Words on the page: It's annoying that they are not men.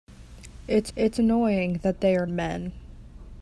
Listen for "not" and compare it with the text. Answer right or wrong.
wrong